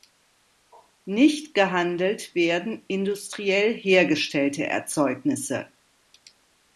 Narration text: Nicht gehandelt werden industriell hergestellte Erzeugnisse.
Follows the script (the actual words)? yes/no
yes